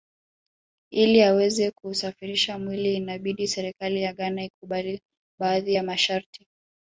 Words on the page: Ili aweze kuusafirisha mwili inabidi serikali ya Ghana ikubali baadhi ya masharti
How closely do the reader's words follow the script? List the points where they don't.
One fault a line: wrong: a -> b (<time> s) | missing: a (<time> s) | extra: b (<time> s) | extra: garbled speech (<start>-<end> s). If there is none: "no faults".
no faults